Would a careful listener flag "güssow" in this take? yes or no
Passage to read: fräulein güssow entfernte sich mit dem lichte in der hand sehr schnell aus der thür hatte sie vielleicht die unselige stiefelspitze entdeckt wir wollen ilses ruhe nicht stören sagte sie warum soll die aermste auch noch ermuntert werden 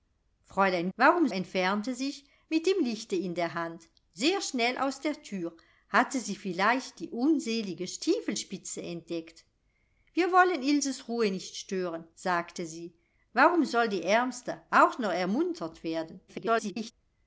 yes